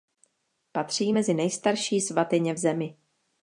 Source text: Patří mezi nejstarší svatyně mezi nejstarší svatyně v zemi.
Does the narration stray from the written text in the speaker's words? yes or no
yes